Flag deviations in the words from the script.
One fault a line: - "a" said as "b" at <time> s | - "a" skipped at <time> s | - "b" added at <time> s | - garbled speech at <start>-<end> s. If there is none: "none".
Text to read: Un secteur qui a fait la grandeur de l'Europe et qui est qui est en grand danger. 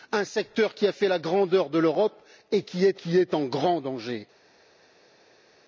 none